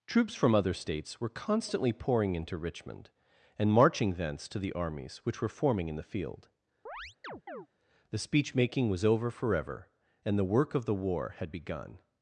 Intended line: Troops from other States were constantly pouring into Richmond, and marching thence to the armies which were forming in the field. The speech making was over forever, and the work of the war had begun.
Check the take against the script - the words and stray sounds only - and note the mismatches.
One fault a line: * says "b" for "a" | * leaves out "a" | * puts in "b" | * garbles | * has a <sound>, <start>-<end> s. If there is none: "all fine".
* has a chirp, 6.9-7.7 s